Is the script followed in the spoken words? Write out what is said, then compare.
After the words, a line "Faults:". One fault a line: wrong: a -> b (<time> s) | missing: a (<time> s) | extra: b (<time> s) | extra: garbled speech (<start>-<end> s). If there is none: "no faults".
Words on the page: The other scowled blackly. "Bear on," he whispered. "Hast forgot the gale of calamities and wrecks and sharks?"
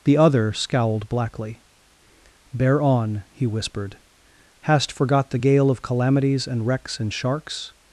The other scowled blackly. "Bear on," he whispered. "Hast forgot the gale of calamities and wrecks and sharks?"
Faults:
no faults